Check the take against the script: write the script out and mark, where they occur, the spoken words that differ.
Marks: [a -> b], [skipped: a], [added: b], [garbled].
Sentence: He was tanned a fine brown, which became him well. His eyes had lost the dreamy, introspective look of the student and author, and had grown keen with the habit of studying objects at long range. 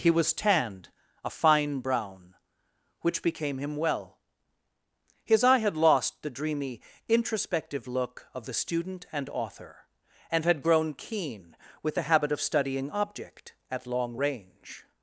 He was tanned a fine brown, which became him well. His [eyes -> eye] had lost the dreamy, introspective look of the student and author, and had grown keen with the habit of studying [objects -> object] at long range.